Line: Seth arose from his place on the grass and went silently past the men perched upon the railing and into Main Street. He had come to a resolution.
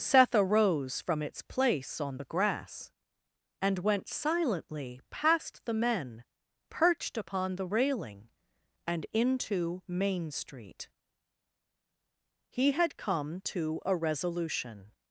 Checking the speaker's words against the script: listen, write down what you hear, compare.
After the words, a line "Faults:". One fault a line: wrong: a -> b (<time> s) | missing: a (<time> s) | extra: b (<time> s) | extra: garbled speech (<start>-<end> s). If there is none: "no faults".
Seth arose from its place on the grass and went silently past the men perched upon the railing and into Main Street. He had come to a resolution.
Faults:
wrong: his -> its (1.2 s)